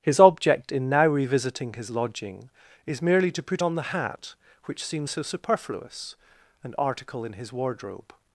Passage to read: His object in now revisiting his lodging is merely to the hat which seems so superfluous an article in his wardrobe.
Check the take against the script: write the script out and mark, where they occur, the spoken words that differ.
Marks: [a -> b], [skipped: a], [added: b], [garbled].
His object in now revisiting his lodging is merely to [added: put on] the hat which seems so superfluous an article in his wardrobe.